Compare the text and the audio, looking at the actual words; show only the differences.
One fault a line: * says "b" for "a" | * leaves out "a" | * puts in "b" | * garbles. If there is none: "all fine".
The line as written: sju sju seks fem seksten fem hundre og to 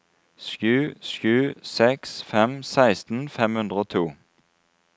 all fine